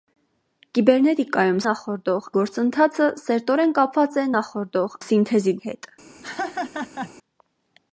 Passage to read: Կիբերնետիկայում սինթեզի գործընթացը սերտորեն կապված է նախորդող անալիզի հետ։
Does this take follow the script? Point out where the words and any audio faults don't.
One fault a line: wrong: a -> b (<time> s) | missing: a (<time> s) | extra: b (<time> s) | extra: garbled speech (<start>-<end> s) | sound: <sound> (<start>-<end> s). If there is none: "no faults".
wrong: սինթեզի -> նախորդող (1.6 s)
wrong: անալիզի -> սինթեզի (5.0 s)
sound: laugh (6.2-7.1 s)